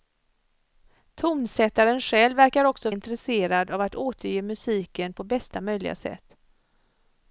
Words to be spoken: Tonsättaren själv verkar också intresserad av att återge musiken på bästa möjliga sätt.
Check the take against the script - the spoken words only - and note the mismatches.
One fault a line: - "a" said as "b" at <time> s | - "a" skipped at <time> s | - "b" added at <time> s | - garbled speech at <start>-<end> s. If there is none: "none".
none